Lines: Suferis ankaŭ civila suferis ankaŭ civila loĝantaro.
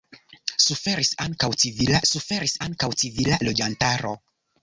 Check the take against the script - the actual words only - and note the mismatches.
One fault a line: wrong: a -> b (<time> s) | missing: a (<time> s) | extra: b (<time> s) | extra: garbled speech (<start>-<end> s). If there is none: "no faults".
no faults